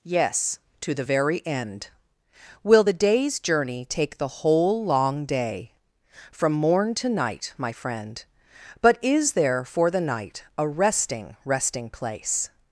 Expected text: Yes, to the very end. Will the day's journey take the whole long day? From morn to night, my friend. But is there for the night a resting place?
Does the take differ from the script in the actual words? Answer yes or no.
yes